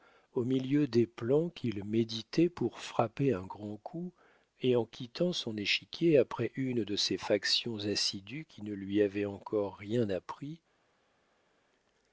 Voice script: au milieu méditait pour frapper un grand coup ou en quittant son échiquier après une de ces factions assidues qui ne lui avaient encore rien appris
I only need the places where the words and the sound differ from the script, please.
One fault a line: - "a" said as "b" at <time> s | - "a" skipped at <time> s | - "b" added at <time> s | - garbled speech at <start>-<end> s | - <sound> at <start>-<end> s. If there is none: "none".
- "des plans qu'il" added at 0.9 s
- "ou" said as "et" at 4.6 s